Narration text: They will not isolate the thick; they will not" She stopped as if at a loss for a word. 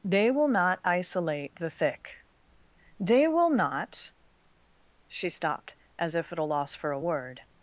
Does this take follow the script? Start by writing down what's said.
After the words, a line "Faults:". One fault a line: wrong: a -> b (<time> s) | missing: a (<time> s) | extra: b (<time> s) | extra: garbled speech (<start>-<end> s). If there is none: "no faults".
They will not isolate the thick; they will not" She stopped as if at a loss for a word.
Faults:
no faults